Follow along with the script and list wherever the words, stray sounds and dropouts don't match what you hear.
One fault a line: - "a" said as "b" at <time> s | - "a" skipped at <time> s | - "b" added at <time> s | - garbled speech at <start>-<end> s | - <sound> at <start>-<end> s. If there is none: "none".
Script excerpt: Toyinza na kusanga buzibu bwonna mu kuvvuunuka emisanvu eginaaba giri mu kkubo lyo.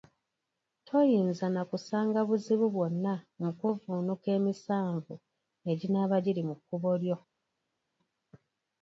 none